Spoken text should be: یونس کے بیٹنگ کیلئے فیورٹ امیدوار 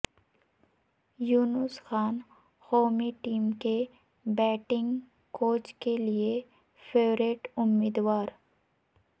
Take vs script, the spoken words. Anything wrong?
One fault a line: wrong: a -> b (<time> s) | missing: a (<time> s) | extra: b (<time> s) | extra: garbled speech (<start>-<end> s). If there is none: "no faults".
extra: خان قومی ٹیم (1.9 s)
extra: کوچ (5.3 s)